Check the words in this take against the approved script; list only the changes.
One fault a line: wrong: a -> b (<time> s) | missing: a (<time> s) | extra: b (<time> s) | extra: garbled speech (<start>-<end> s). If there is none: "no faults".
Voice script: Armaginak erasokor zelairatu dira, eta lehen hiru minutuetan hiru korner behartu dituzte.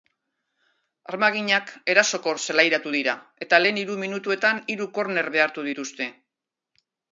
no faults